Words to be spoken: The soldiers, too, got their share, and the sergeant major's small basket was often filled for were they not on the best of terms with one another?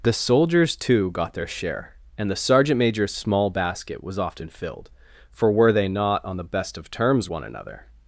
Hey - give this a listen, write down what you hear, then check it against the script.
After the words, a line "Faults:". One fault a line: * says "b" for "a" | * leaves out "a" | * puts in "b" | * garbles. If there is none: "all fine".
The soldiers, too, got their share, and the sergeant major's small basket was often filled for were they not on the best of terms one another?
Faults:
* leaves out "with"